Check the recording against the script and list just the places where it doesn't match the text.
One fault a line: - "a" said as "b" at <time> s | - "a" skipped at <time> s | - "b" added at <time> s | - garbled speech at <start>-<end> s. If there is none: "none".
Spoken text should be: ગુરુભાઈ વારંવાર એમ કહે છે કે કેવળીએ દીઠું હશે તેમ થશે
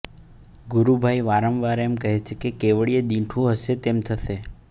none